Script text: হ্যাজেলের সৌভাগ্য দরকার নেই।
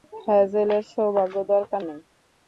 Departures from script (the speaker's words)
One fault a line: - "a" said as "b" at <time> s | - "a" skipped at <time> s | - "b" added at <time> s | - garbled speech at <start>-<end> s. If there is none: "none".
none